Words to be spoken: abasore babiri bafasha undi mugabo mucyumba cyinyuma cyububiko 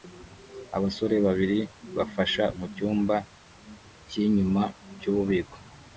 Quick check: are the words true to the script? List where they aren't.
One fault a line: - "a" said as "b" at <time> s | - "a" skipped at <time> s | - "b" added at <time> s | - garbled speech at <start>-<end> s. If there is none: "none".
- "undi mugabo" skipped at 2.4 s